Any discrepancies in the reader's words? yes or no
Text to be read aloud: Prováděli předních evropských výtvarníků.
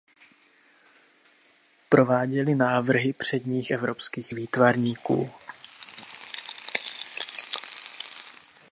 yes